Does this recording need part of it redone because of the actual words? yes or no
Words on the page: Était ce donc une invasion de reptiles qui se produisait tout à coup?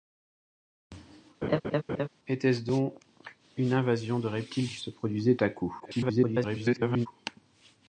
yes